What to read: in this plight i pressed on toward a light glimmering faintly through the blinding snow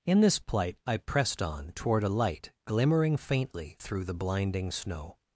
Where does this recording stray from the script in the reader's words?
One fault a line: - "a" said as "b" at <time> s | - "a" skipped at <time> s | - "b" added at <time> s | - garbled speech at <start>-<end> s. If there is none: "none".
none